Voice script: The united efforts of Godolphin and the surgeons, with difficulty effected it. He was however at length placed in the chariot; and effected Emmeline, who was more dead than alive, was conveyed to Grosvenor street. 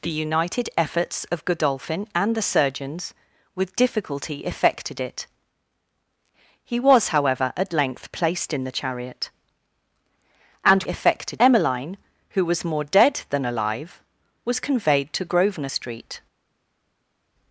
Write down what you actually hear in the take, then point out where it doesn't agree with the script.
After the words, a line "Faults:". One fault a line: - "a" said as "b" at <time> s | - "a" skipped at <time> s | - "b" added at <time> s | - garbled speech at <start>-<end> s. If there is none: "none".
The united efforts of Godolphin and the surgeons, with difficulty effected it. He was however at length placed in the chariot; and effected Emmeline, who was more dead than alive, was conveyed to Grosvenor street.
Faults:
none